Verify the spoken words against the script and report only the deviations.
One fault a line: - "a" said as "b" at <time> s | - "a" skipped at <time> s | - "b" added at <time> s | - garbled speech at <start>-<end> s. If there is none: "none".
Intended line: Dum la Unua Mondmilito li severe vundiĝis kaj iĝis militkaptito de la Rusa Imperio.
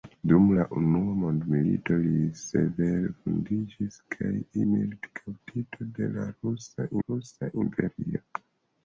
- "iĝis" skipped at 4.3 s
- "Rusa" added at 7.0 s